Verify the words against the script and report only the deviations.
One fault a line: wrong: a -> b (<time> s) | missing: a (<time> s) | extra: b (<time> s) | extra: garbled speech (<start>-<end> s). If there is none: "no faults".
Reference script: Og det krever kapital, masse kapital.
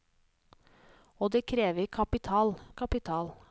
missing: masse (2.5 s)